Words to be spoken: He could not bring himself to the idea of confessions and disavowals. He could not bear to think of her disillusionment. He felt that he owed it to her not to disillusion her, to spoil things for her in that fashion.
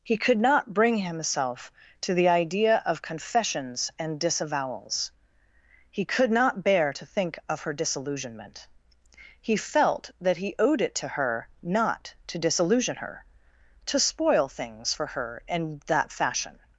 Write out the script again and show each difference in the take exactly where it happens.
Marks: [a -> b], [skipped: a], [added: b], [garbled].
He could not bring himself to the idea of confessions and disavowals. He could not bear to think of her disillusionment. He felt that he owed it to her not to disillusion her, to spoil things for her in that fashion.